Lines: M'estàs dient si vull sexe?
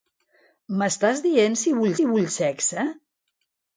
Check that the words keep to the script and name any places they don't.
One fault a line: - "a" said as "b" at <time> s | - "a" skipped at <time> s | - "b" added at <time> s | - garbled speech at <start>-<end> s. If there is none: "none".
- "si vull" added at 2.0 s